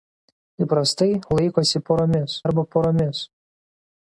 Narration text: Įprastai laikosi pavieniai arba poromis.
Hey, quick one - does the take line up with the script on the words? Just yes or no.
no